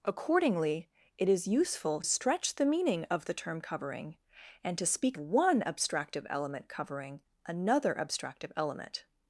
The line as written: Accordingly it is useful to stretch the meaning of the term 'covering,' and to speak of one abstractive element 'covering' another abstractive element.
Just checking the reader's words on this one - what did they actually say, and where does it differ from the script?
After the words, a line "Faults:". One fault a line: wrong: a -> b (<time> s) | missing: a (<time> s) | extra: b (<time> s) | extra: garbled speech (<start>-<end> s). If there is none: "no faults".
Accordingly it is useful stretch the meaning of the term 'covering,' and to speak one abstractive element 'covering' another abstractive element.
Faults:
missing: to (2.0 s)
missing: of (5.2 s)